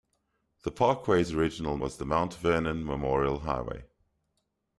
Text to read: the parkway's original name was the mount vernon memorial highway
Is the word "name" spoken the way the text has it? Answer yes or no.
no